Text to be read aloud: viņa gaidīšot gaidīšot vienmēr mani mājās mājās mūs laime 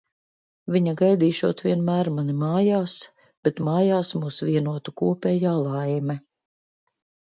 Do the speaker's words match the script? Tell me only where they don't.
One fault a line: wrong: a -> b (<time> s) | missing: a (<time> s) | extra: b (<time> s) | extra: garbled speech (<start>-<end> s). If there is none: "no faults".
missing: gaidīšot (1.6 s)
extra: bet (3.5 s)
extra: vienotu kopējā (4.5 s)